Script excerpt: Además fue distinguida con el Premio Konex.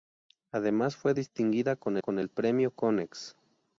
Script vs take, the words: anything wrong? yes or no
yes